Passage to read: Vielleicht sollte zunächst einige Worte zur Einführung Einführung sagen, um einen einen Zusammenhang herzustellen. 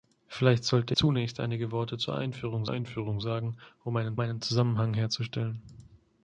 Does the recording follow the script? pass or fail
pass